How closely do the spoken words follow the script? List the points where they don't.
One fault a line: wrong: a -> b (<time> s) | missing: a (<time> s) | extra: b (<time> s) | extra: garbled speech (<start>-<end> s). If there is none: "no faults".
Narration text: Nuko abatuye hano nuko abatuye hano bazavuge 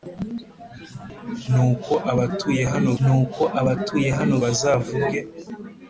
no faults